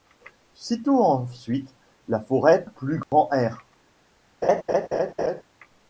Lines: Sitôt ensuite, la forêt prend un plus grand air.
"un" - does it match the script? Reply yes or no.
no